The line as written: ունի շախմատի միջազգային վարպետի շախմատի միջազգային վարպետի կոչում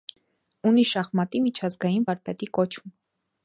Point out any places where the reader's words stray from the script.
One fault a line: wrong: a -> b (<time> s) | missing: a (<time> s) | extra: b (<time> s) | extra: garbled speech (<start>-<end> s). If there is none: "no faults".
missing: շախմատի միջազգային վարպետի (2.5 s)